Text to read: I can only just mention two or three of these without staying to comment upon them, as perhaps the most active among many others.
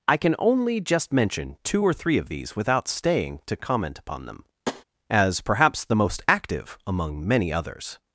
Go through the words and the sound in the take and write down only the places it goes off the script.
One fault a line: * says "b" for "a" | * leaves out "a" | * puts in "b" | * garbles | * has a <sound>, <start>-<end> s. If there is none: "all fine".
* has a tap, 4.7-4.8 s